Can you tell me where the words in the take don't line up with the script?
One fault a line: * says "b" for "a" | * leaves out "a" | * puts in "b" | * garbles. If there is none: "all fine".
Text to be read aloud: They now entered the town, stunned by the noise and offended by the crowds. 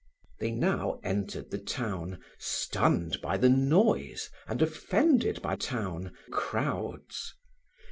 * says "town" for "the"